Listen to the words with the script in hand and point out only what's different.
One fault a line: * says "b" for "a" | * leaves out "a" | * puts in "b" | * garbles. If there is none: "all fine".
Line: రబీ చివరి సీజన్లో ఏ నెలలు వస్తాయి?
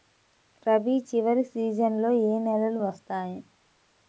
all fine